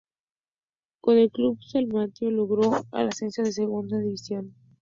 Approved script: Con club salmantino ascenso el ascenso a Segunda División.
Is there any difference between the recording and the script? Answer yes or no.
yes